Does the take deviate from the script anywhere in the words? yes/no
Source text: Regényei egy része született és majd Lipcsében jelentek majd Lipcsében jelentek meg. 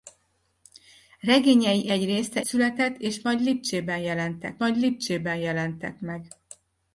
no